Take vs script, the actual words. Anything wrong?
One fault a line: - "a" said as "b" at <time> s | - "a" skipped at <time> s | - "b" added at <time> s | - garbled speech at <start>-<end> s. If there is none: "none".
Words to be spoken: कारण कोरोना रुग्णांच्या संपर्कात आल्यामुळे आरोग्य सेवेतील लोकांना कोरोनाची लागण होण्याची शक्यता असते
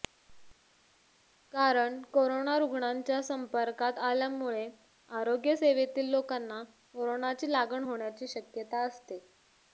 none